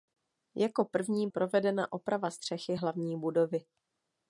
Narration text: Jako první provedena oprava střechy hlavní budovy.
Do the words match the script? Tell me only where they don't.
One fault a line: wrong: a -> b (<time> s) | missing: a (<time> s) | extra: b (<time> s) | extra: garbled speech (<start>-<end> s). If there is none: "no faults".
no faults